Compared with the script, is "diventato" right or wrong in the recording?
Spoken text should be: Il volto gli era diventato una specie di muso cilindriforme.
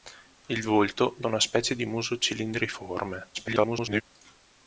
wrong